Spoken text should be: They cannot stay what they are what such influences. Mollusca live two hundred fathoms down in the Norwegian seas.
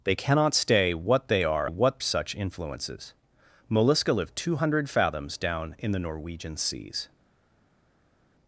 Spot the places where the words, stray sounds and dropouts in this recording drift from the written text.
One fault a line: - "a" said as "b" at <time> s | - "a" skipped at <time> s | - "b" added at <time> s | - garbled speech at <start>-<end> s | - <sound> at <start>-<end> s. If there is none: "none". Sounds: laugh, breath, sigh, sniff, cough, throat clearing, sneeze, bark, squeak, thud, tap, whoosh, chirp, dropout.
none